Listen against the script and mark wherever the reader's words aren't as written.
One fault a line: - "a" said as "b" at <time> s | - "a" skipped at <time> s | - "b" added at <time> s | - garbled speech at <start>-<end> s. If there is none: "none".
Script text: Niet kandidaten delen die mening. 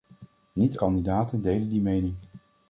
none